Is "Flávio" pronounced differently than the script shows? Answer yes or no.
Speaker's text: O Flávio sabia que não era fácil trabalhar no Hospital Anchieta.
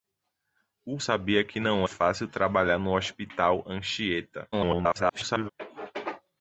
yes